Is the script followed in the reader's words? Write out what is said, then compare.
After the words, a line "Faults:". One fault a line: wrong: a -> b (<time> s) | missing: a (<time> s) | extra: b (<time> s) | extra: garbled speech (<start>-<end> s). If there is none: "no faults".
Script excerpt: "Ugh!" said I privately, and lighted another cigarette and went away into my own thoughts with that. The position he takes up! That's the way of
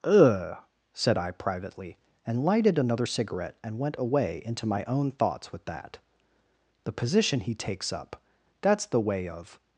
"Ugh!" said I privately, and lighted another cigarette and went away into my own thoughts with that. The position he takes up! That's the way of
Faults:
no faults